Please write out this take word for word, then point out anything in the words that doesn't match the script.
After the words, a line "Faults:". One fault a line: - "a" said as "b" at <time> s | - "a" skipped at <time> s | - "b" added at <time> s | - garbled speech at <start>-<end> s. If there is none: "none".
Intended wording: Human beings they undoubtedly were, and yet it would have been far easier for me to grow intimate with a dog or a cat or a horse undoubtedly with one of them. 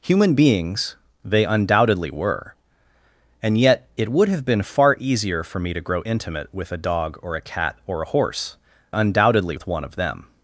Human beings they undoubtedly were, and yet it would have been far easier for me to grow intimate with a dog or a cat or a horse undoubtedly with one of them.
Faults:
none